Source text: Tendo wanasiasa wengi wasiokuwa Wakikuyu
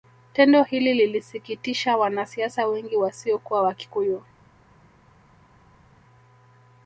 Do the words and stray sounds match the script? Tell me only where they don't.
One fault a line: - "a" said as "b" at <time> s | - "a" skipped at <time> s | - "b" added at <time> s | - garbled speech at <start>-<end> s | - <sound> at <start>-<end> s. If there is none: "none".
- "hili lilisikitisha" added at 0.6 s